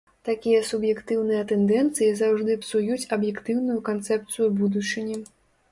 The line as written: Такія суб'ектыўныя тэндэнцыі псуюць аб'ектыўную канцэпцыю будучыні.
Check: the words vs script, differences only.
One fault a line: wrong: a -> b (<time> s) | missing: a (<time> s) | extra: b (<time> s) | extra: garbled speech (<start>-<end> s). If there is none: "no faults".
extra: заўжды (2.2 s)